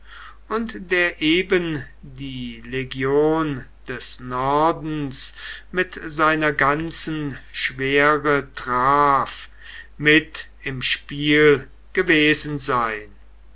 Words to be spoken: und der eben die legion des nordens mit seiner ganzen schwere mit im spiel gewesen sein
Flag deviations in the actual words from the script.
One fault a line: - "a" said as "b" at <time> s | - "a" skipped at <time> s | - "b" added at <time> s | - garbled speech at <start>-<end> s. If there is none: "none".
- "traf" added at 8.5 s